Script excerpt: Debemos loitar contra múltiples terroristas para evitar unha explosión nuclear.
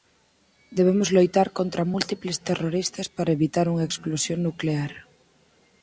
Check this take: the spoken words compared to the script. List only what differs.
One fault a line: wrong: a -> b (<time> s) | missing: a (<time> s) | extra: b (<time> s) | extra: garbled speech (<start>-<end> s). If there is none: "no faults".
no faults